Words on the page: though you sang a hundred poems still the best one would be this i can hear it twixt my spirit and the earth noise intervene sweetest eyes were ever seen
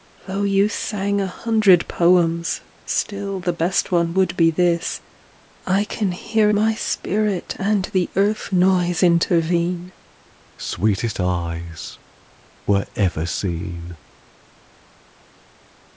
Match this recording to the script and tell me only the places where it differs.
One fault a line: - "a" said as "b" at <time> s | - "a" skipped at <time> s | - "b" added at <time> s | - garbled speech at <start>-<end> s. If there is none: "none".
- "it twixt" skipped at 6.5 s